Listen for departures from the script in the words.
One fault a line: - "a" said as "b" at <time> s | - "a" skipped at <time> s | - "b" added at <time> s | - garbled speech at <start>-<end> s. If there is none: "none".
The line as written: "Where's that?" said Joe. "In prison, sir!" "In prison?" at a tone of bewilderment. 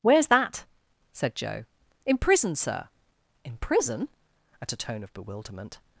none